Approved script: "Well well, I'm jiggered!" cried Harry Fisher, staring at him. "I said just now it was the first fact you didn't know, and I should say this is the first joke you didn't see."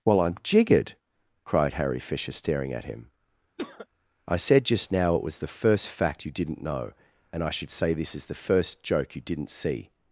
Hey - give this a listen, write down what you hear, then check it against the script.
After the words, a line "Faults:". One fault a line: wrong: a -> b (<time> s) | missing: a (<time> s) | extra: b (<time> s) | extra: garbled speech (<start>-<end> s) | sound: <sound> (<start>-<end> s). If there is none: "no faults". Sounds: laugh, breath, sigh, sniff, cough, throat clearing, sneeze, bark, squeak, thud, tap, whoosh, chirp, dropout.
"Well, I'm jiggered!" cried Harry Fisher, staring at him. "I said just now it was the first fact you didn't know, and I should say this is the first joke you didn't see."
Faults:
missing: well (0.2 s)
sound: cough (3.6-3.9 s)